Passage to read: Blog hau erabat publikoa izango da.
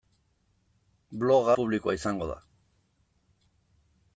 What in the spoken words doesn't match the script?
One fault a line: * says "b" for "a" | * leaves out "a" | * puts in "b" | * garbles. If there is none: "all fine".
* leaves out "hau erabat"